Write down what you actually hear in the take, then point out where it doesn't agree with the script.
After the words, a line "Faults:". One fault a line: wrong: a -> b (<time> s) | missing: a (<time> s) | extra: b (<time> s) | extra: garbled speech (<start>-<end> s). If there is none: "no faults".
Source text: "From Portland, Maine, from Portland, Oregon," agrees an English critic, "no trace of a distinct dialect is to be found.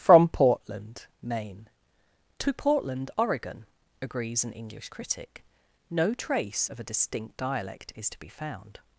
"From Portland, Maine, to Portland, Oregon," agrees an English critic, "no trace of a distinct dialect is to be found.
Faults:
wrong: from -> to (2.4 s)